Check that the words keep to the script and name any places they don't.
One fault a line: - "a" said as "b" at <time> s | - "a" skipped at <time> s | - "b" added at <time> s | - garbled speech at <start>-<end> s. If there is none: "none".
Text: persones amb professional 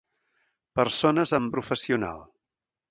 none